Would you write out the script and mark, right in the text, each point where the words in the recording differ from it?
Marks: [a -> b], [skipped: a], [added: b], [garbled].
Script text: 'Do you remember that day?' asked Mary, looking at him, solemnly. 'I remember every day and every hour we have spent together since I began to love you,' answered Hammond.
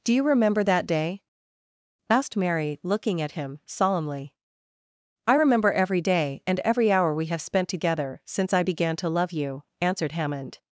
'Do you remember that day?' asked Mary, looking at him, solemnly. 'I remember every day and every hour we have spent together since I began to love you,' answered Hammond.